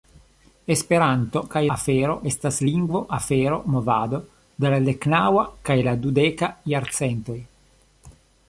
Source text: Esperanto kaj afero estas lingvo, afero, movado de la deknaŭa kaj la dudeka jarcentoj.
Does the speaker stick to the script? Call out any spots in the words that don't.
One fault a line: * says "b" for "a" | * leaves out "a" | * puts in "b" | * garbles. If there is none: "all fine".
all fine